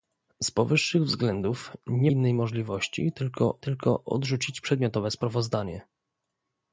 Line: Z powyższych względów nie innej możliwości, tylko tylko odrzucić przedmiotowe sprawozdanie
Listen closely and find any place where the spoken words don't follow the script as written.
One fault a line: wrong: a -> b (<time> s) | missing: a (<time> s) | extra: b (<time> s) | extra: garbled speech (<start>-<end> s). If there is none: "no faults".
no faults